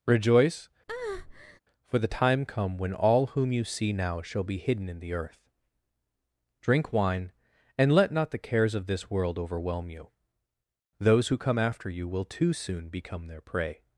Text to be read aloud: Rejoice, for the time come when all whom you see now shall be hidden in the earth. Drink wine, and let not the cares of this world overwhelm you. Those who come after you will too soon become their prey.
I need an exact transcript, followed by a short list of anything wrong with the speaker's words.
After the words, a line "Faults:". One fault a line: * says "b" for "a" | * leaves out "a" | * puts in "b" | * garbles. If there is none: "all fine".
Rejoice, for the time come when all whom you see now shall be hidden in the earth. Drink wine, and let not the cares of this world overwhelm you. Those who come after you will too soon become their prey.
Faults:
all fine